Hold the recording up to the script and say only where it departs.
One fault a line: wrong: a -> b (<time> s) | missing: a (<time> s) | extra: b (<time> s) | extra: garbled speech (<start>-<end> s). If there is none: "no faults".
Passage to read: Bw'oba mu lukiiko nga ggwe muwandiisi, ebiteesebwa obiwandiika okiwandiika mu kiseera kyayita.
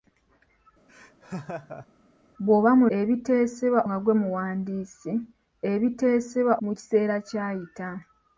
wrong: lukiiko -> ebiteesebwa (3.0 s)
missing: obiwandiika okiwandiika (6.5 s)